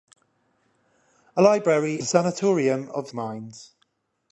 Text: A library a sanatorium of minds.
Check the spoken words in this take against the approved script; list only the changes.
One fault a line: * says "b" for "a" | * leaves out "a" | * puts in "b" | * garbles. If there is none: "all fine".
all fine